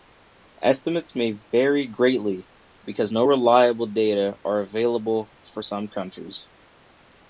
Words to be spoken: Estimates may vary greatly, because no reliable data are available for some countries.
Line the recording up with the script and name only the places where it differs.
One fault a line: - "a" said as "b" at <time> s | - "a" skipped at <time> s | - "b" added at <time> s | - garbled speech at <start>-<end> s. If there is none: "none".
none